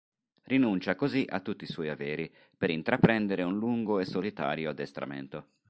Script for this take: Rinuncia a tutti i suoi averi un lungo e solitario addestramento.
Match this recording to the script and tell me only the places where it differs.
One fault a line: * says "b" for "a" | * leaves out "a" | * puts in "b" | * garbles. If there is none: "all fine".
* puts in "così"
* puts in "per intraprendere"